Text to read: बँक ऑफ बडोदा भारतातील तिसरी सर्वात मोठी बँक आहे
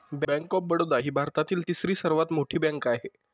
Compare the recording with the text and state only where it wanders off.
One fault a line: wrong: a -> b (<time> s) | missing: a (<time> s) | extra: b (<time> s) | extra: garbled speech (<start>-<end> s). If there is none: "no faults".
extra: ही (1.0 s)